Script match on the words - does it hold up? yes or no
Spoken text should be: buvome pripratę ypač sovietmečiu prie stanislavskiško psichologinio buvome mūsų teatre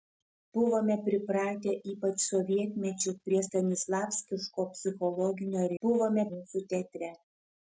yes